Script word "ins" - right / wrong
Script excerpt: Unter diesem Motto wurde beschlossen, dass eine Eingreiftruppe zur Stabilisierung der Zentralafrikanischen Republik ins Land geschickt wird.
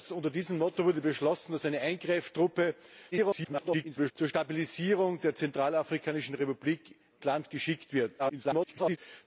wrong